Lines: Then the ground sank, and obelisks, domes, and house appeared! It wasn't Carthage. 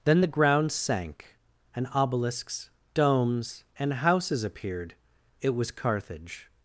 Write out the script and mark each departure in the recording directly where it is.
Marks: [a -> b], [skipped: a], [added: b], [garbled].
Then the ground sank, and obelisks, domes, and [house -> houses] appeared! It [wasn't -> was] Carthage.